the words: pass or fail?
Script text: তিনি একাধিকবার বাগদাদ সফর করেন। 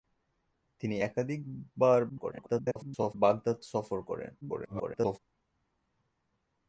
fail